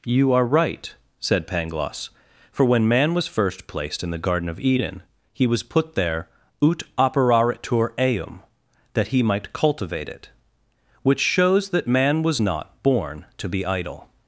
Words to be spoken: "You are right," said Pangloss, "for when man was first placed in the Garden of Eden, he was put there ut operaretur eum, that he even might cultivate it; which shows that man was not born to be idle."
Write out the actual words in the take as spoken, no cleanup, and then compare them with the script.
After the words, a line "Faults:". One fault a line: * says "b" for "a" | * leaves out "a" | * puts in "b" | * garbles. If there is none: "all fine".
"You are right," said Pangloss, "for when man was first placed in the Garden of Eden, he was put there ut operaretur eum, that he might cultivate it; which shows that man was not born to be idle."
Faults:
* leaves out "even"